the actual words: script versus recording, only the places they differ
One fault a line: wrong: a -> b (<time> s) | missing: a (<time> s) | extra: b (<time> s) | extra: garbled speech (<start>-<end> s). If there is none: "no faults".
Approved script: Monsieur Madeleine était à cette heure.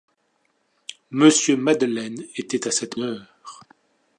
no faults